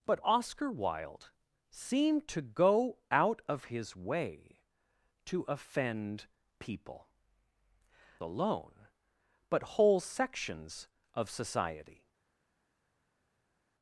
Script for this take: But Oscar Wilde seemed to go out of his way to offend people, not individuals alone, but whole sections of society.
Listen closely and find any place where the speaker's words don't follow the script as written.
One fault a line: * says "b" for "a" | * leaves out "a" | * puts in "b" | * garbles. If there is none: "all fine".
* leaves out "not individuals"